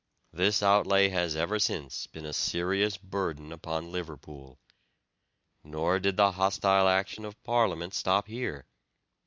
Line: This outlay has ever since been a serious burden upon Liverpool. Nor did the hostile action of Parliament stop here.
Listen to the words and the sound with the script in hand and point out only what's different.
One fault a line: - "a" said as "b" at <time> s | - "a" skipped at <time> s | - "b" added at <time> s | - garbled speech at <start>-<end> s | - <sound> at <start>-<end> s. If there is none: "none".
none